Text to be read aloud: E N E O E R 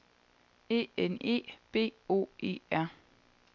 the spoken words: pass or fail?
fail